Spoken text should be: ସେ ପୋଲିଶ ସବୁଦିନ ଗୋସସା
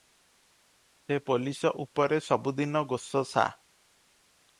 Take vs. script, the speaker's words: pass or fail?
fail